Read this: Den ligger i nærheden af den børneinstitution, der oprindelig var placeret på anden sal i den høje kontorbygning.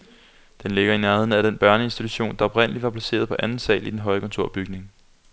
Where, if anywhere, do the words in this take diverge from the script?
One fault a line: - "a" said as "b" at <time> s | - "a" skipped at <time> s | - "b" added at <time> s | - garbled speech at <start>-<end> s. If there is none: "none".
none